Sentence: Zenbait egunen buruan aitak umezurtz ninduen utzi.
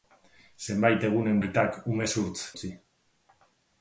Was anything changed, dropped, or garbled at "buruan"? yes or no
yes